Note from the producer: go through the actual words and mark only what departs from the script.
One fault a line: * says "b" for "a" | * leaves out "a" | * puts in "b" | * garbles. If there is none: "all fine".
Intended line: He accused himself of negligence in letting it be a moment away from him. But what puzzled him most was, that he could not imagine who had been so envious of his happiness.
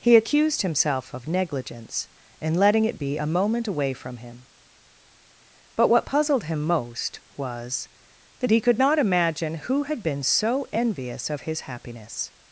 all fine